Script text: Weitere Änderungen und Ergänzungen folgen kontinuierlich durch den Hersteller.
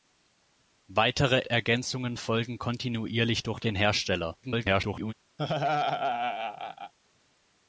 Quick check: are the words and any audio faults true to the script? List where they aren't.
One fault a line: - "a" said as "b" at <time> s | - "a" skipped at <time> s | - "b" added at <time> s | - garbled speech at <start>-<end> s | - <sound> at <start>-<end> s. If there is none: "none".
- "Änderungen und" skipped at 1.4 s
- garbled speech at 4.4-5.1 s
- laugh at 5.4-6.9 s